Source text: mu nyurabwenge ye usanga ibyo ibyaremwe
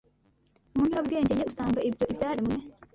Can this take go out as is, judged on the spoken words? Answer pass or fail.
pass